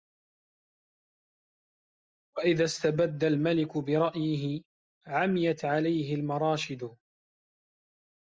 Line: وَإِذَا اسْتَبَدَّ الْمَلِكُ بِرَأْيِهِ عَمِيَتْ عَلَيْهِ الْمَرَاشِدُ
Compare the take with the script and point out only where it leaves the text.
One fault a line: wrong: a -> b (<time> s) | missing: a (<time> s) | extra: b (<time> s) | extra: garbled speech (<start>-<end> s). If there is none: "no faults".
no faults